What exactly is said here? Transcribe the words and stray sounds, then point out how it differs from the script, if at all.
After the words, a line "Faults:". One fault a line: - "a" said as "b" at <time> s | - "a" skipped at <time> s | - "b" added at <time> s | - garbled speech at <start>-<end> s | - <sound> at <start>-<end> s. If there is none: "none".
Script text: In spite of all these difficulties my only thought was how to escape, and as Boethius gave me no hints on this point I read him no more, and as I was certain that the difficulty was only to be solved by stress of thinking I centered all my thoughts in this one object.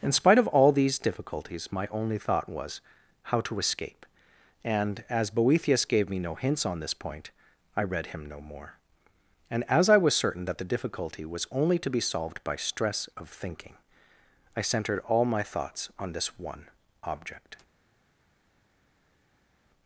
In spite of all these difficulties my only thought was how to escape, and as Boethius gave me no hints on this point I read him no more, and as I was certain that the difficulty was only to be solved by stress of thinking I centered all my thoughts on this one object.
Faults:
- "in" said as "on" at 16.0 s